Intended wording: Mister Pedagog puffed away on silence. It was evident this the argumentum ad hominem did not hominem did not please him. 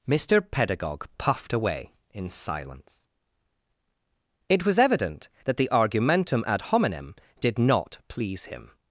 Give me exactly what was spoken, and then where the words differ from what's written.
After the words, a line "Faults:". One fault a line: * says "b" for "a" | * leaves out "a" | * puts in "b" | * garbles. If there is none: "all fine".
Mister Pedagog puffed away in silence. It was evident that the argumentum ad hominem did not please him.
Faults:
* says "in" for "on"
* says "that" for "this"
* leaves out "hominem did not"